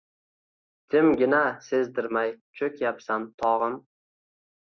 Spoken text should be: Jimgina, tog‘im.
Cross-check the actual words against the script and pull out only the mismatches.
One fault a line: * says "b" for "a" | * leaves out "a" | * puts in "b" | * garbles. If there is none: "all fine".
* puts in "sezdirmay cho‘kyapsan"